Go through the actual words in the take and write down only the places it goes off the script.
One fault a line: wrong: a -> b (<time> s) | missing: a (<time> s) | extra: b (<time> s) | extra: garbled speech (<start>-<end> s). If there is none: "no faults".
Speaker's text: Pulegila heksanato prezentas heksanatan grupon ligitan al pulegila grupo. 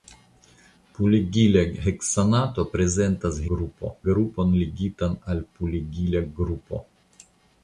wrong: heksanatan -> grupo (3.5 s)